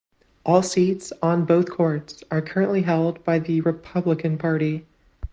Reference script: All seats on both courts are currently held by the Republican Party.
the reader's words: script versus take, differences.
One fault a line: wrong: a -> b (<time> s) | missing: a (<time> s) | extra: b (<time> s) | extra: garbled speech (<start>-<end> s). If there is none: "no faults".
no faults